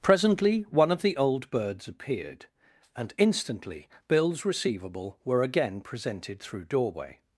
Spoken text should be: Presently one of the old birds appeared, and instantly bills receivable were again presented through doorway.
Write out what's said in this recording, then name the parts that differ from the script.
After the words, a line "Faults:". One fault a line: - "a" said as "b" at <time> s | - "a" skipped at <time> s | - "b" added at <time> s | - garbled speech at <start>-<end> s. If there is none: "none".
Presently one of the old birds appeared, and instantly bills receivable were again presented through doorway.
Faults:
none